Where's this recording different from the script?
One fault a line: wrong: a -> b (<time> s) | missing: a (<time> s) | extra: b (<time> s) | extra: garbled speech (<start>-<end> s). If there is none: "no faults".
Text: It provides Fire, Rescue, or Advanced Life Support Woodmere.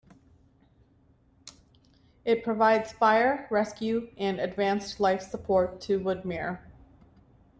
wrong: or -> and (4.2 s)
extra: to (5.8 s)